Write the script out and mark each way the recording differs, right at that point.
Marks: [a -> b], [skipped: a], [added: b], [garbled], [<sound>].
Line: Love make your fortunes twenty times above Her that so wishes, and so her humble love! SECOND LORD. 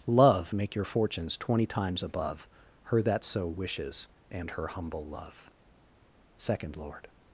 Love make your fortunes twenty times above Her that so wishes, and [skipped: so] her humble love! SECOND LORD.